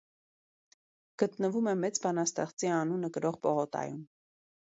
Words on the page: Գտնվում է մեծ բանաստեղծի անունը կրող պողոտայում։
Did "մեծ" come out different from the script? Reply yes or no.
no